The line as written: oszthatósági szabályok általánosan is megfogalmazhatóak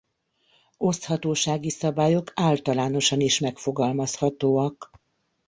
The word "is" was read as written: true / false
true